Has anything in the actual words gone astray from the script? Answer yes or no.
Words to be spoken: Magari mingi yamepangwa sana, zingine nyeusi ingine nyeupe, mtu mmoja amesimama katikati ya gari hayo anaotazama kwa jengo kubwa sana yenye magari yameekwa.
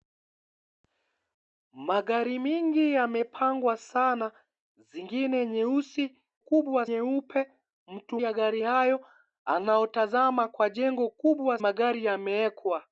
yes